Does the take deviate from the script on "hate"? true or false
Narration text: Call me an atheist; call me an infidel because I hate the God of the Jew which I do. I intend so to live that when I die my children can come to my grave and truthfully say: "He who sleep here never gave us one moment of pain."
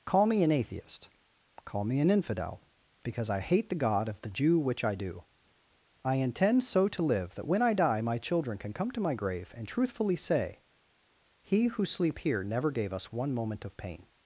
false